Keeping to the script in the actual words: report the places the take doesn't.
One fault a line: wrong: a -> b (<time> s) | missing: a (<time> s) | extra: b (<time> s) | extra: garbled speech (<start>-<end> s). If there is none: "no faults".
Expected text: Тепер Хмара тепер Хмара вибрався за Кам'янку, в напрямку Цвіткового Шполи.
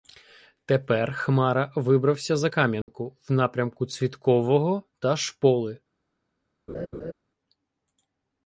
missing: тепер Хмара (1.7 s)
extra: та (5.0 s)